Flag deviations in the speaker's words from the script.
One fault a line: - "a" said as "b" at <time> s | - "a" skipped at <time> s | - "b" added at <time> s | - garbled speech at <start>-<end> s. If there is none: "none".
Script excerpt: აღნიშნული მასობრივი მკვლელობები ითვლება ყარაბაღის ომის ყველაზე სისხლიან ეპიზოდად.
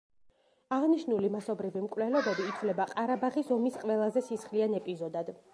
none